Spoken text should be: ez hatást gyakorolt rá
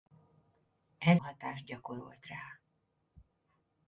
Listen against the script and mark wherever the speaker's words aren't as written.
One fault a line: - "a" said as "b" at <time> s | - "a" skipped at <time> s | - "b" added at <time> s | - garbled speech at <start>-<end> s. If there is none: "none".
none